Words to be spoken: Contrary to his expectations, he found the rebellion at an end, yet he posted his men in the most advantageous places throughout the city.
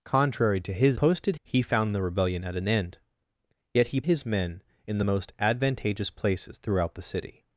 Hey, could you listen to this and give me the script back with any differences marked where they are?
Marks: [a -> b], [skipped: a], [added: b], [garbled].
Contrary to his [expectations, -> posted] he found the rebellion at an end, yet he [skipped: posted] his men in the most advantageous places throughout the city.